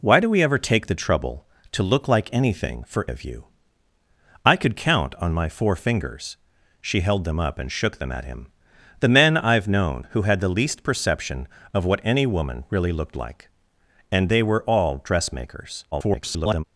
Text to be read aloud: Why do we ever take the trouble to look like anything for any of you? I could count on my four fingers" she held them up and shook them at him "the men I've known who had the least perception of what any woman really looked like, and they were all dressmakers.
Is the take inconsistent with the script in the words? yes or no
yes